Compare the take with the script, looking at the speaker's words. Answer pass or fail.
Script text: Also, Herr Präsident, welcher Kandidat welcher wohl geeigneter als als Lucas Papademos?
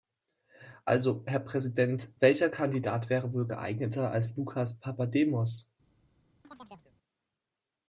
fail